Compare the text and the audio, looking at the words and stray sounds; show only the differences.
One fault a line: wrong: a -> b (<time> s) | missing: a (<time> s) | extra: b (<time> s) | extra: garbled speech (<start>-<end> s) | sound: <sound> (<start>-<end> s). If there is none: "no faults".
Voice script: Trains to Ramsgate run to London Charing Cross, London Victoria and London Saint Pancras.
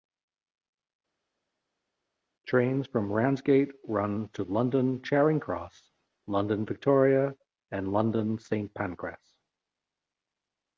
wrong: to -> from (2.9 s)